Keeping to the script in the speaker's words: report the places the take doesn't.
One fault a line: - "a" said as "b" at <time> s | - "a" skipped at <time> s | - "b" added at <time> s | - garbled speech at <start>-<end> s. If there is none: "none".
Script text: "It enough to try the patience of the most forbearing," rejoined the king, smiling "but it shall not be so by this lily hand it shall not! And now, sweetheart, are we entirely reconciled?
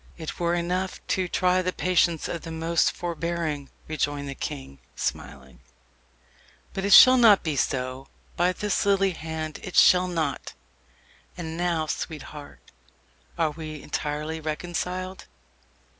- "were" added at 0.4 s